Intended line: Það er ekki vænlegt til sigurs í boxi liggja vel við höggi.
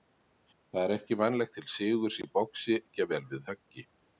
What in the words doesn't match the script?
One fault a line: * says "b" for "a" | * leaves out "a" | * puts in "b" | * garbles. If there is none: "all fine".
all fine